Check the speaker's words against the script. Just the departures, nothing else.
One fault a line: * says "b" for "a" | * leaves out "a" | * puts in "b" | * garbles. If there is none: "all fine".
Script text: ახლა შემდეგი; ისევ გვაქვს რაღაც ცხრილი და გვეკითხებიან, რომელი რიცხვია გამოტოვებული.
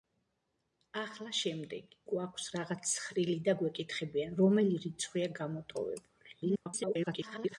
* leaves out "ისევ"
* garbles